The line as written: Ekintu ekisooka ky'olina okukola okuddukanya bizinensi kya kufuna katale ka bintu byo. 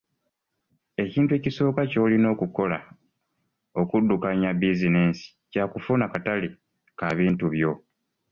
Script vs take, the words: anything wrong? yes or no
no